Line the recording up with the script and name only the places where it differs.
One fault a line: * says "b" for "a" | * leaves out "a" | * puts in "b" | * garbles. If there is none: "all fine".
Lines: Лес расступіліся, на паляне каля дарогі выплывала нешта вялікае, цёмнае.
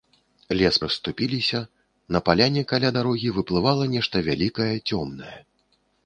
all fine